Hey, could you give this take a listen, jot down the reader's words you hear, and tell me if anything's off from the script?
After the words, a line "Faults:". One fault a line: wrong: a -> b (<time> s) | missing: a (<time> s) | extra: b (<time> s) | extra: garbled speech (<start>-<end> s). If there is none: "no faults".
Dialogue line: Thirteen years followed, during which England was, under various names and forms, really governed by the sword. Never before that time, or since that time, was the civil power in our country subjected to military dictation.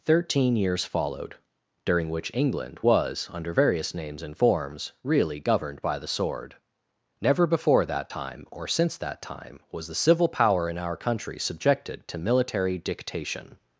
Thirteen years followed, during which England was, under various names and forms, really governed by the sword. Never before that time, or since that time, was the civil power in our country subjected to military dictation.
Faults:
no faults